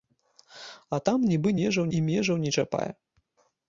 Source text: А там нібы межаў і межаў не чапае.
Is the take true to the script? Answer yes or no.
yes